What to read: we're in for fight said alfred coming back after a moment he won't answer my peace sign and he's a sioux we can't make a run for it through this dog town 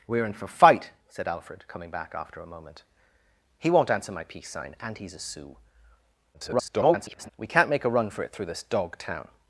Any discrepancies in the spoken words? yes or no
yes